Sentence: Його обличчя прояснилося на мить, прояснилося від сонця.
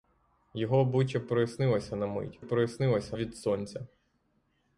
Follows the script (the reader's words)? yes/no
yes